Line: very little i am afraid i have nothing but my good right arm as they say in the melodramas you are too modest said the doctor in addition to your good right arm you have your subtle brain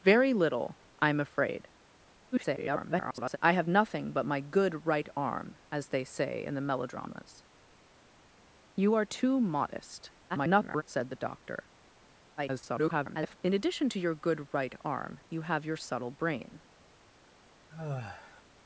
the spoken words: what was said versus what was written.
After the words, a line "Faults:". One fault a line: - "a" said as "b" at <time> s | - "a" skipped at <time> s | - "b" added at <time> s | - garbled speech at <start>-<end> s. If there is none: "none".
very little i am afraid [garbled] i have nothing but my good right arm as they say in the melodramas you are too modest [garbled] said the doctor [garbled] in addition to your good right arm you have your subtle brain
Faults:
- garbled speech at 2.3-3.4 s
- garbled speech at 10.3-10.8 s
- garbled speech at 12.4-13.4 s